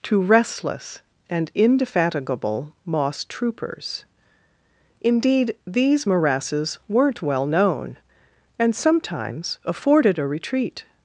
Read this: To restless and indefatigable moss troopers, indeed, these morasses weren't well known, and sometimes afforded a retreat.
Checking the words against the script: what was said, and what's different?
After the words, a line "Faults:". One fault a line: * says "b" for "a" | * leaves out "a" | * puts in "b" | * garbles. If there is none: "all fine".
To restless and indefatigable moss troopers, indeed, these morasses weren't well known, and sometimes afforded a retreat.
Faults:
all fine